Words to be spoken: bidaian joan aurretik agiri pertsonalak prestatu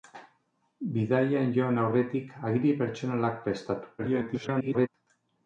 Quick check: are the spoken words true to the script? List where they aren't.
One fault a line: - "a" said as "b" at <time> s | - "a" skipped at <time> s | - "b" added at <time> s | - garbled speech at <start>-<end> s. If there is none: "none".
- garbled speech at 4.0-4.9 s